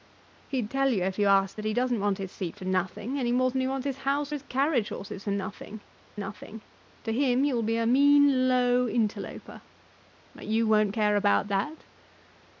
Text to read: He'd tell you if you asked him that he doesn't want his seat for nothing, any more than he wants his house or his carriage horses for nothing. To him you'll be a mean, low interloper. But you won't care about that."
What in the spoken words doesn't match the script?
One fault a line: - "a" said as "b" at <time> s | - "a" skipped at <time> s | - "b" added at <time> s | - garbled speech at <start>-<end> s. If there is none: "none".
- "him" skipped at 1.6 s
- "or" skipped at 4.3 s
- "nothing" added at 6.1 s